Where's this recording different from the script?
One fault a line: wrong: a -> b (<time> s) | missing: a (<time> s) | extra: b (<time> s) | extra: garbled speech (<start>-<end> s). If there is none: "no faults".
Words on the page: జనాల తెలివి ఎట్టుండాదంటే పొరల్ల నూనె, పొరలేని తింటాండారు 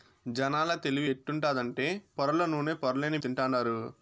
no faults